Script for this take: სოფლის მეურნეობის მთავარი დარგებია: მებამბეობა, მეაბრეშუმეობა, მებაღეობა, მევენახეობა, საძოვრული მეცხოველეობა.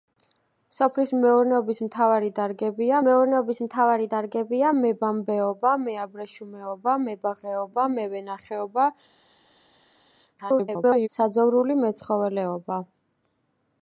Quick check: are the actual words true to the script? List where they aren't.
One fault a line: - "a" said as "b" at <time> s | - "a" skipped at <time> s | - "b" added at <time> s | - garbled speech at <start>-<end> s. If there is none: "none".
- "მეურნეობის მთავარი დარგებია" added at 3.1 s
- garbled speech at 10.4-11.1 s